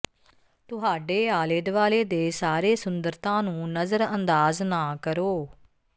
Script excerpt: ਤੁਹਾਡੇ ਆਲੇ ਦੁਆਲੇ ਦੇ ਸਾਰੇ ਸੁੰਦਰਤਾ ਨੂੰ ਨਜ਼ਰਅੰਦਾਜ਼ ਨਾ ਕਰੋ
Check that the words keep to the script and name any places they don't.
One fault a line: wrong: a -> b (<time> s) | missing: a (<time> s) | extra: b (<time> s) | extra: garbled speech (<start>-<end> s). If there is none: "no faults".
no faults